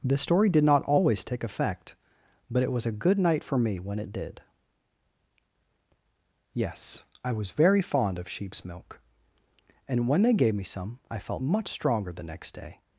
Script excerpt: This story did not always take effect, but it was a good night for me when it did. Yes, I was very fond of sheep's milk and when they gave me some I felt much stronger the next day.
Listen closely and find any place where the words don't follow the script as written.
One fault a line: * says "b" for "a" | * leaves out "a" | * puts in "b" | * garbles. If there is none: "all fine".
all fine